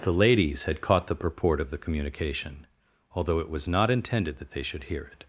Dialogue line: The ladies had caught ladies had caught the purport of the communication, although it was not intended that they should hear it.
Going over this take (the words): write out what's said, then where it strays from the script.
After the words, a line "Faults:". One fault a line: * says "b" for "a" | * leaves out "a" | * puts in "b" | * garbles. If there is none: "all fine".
The ladies had caught the purport of the communication, although it was not intended that they should hear it.
Faults:
* leaves out "ladies had caught"